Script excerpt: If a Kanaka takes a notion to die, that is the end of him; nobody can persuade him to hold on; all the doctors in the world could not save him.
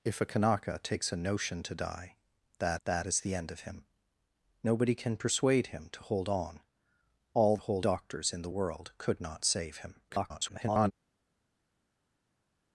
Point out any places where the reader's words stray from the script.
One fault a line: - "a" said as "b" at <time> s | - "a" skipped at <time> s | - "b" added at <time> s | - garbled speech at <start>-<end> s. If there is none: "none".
- "that" added at 2.8 s
- "the" said as "hold" at 7.6 s
- garbled speech at 10.1-10.9 s